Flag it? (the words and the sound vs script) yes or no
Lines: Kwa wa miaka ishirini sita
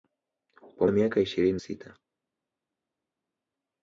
no